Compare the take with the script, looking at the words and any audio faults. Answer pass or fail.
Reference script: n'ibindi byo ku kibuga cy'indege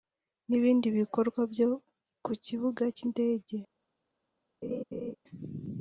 fail